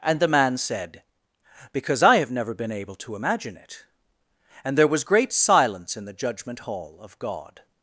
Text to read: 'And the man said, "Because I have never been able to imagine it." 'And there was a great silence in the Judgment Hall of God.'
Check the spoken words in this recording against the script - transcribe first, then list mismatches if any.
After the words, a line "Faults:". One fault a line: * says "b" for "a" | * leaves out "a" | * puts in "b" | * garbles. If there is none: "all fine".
'And the man said, "Because I have never been able to imagine it." 'And there was great silence in the Judgment Hall of God.'
Faults:
* leaves out "a"